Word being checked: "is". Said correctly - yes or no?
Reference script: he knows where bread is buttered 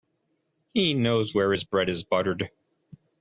yes